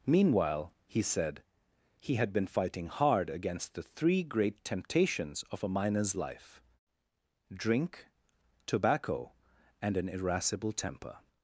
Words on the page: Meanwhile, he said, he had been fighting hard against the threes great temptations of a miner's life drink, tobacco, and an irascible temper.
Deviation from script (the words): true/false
true